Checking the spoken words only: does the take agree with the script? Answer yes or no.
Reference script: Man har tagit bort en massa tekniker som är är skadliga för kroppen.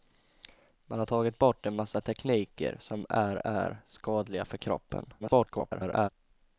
no